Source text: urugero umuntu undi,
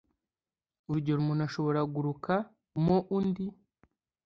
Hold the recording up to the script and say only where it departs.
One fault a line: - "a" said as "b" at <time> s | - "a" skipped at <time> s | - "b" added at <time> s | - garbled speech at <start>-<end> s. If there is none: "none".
- "ashobora guruka mo" added at 1.5 s